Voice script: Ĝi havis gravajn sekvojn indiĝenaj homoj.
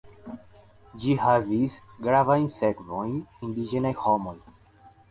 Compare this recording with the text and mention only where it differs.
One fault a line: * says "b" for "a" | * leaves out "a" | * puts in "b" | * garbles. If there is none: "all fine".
all fine